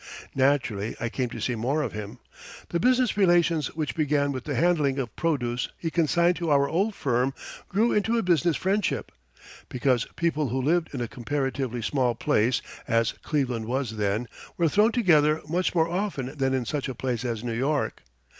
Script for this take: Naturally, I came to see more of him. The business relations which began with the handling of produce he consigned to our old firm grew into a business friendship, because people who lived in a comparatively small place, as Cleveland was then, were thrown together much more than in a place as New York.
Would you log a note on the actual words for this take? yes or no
yes